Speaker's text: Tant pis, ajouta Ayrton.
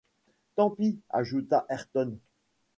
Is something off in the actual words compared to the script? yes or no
no